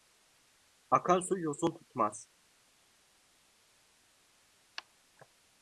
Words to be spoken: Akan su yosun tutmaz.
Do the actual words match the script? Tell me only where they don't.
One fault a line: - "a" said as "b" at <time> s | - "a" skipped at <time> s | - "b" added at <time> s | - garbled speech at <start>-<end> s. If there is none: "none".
none